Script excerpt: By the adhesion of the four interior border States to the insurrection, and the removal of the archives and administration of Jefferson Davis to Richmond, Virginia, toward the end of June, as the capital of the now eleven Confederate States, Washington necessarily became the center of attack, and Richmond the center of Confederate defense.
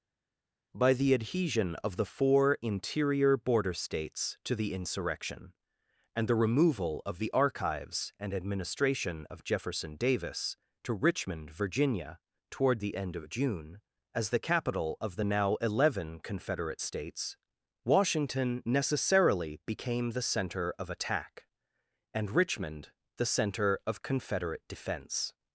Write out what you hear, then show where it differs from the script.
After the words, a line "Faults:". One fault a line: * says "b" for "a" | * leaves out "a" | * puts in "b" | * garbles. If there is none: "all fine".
By the adhesion of the four interior border States to the insurrection, and the removal of the archives and administration of Jefferson Davis to Richmond, Virginia, toward the end of June, as the capital of the now eleven Confederate States, Washington necessarily became the center of attack, and Richmond the center of Confederate defense.
Faults:
all fine